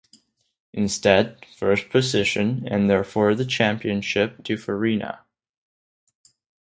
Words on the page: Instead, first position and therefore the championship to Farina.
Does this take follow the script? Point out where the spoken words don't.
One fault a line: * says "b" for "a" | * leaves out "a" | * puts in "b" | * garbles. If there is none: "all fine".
all fine